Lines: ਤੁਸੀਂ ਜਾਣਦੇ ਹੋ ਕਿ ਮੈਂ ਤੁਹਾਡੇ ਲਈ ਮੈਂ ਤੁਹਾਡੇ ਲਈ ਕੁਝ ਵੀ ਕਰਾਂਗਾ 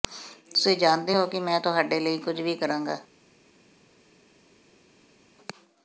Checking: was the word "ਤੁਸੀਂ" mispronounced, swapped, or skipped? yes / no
no